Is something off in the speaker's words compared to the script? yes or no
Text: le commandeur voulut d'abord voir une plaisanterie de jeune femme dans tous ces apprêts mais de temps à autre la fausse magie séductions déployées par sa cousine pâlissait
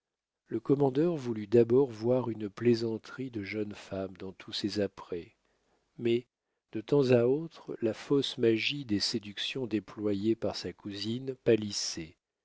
yes